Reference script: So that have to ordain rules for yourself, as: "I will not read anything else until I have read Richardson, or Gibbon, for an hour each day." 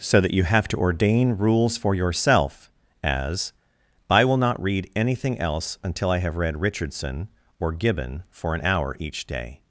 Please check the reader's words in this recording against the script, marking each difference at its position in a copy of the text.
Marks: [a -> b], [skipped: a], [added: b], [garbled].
So that [added: you] have to ordain rules for yourself, as: "I will not read anything else until I have read Richardson, or Gibbon, for an hour each day."